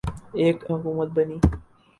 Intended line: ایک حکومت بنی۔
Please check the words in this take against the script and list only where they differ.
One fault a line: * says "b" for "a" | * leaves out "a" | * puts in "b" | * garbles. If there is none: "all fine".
all fine